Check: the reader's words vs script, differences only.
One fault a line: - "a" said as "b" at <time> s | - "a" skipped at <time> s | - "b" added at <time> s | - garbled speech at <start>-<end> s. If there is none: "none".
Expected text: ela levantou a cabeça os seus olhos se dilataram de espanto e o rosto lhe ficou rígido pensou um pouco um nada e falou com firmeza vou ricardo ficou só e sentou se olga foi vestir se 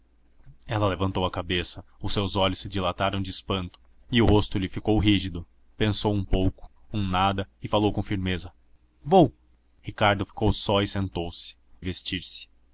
- "olga foi" skipped at 11.5 s